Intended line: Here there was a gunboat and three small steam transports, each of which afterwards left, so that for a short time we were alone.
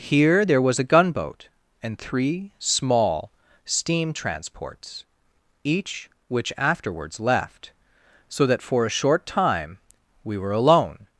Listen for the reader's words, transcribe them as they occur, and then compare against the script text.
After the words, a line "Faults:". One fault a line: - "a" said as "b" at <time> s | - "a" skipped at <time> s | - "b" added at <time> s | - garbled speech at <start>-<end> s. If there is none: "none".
Here there was a gunboat and three small steam transports, each which afterwards left, so that for a short time we were alone.
Faults:
- "of" skipped at 6.1 s